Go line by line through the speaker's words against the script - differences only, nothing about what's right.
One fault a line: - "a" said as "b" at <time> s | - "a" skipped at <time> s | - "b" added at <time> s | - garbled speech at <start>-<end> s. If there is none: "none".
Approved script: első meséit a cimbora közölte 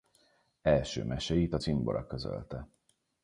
none